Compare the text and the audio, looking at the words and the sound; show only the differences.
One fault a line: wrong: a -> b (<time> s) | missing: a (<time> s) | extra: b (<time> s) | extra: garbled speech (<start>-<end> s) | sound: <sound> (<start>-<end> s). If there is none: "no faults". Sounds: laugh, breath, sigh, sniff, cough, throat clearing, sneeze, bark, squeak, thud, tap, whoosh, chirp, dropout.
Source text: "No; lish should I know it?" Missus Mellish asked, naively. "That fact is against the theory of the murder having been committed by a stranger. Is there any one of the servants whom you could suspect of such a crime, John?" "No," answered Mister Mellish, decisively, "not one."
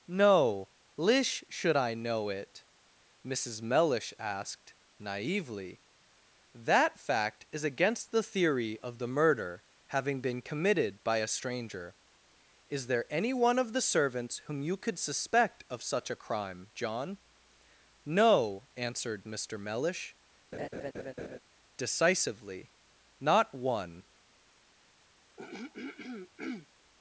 sound: laugh (20.5-21.4 s)
sound: throat clearing (25.4-26.7 s)